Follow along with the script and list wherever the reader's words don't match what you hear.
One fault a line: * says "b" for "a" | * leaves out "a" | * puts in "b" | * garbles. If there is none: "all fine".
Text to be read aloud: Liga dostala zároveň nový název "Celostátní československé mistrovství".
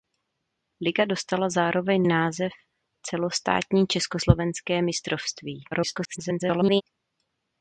* leaves out "nový"
* garbles